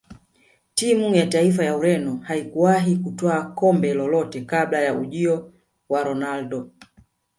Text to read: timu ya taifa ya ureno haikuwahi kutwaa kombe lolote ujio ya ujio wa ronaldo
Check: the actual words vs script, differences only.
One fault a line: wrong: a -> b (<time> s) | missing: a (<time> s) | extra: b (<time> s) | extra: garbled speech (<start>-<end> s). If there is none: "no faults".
wrong: ujio -> kabla (4.4 s)